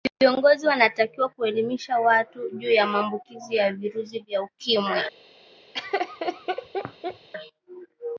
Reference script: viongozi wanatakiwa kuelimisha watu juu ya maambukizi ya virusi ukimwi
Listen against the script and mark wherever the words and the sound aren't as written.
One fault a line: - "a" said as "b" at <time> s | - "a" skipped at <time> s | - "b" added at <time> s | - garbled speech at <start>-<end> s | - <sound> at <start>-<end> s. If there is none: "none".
- "vya" added at 4.2 s
- laugh at 5.7-7.3 s